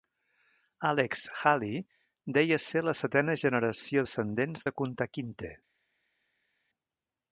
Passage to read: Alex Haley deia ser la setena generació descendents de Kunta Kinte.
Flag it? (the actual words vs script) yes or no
no